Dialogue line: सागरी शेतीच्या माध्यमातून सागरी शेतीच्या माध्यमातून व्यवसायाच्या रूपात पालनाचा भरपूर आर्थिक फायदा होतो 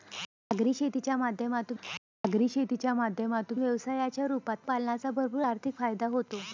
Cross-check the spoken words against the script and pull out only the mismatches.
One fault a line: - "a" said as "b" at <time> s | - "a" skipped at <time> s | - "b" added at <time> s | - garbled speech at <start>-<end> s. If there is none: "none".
none